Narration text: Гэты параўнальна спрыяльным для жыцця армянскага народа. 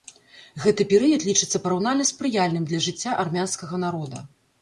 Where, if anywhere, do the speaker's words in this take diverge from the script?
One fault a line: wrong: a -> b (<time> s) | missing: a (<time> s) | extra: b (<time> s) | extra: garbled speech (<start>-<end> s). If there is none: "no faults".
extra: перыяд лічыцца (0.9 s)